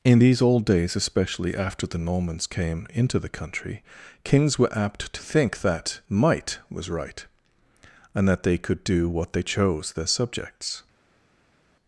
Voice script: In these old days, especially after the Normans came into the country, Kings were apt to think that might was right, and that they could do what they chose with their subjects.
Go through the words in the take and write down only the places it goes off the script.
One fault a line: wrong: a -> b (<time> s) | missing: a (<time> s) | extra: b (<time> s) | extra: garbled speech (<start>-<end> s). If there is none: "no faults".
missing: with (9.9 s)